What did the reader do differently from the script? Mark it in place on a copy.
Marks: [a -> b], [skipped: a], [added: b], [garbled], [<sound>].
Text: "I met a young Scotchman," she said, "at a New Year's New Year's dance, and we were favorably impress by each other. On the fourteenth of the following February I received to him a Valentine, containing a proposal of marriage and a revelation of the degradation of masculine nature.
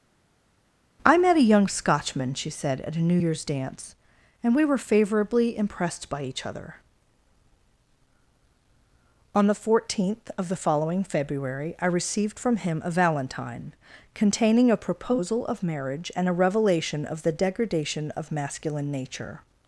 "I met a young Scotchman," she said, "at a New Year's [skipped: New Year's] dance, and we were favorably [impress -> impressed] by each other. On the fourteenth of the following February I received [to -> from] him a Valentine, containing a proposal of marriage and a revelation of the degradation of masculine nature.